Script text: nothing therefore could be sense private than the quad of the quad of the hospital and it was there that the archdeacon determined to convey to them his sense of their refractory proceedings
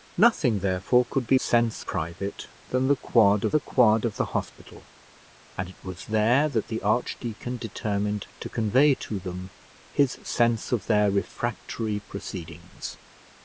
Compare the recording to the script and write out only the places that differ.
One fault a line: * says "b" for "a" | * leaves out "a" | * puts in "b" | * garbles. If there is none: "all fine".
all fine